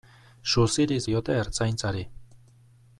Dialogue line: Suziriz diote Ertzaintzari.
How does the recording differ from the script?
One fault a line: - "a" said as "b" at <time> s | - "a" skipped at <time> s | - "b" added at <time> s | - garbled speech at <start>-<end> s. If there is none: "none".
none